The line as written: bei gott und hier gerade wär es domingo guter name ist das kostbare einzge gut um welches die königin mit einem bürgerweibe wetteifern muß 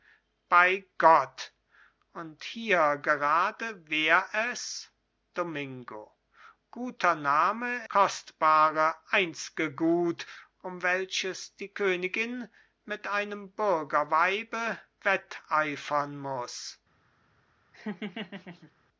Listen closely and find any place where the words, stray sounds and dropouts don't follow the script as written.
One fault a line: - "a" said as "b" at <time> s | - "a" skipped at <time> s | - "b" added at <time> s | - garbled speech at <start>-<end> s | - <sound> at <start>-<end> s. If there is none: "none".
- "ist das" skipped at 7.9 s
- laugh at 17.7-18.7 s